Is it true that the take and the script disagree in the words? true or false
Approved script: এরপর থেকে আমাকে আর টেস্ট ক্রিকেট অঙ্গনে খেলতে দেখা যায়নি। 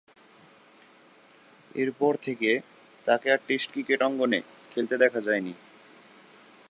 true